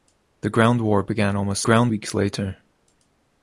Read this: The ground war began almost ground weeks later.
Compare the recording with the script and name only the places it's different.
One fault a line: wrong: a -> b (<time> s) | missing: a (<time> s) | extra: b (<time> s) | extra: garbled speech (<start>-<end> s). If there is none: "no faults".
no faults